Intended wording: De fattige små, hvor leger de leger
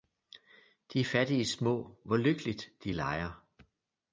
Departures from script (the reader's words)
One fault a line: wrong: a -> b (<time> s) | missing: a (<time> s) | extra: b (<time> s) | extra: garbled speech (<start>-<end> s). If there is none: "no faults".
wrong: leger -> lykkeligt (2.2 s)